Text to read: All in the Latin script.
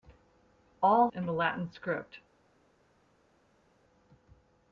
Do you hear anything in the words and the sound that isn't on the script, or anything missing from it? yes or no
no